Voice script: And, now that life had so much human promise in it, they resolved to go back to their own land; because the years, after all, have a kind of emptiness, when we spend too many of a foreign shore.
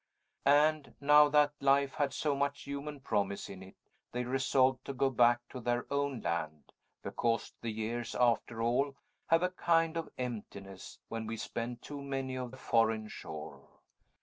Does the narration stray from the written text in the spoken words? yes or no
no